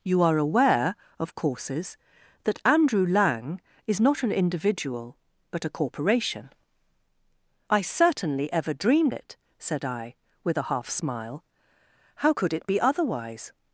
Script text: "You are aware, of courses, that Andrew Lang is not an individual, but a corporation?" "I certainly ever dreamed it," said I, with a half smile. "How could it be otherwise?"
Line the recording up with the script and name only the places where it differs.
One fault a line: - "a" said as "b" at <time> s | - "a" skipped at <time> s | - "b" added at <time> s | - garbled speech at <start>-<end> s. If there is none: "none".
none